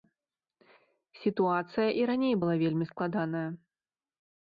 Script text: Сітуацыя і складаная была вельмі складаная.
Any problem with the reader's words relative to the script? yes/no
yes